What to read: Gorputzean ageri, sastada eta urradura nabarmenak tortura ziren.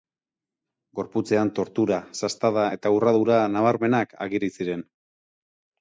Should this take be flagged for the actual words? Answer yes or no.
yes